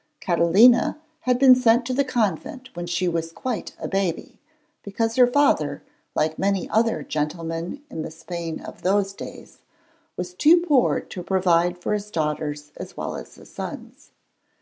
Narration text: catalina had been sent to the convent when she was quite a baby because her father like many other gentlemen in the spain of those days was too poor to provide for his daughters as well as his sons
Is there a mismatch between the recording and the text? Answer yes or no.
no